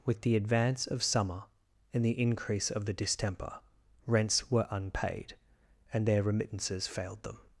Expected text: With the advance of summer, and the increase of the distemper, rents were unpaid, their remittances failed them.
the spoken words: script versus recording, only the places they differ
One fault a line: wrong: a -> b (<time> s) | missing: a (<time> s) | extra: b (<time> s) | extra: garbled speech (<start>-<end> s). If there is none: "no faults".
extra: and (5.9 s)